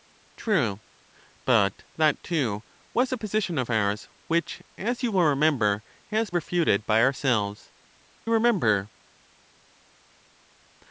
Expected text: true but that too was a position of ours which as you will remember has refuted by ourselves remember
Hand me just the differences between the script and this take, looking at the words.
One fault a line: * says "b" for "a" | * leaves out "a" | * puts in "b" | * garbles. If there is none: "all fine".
all fine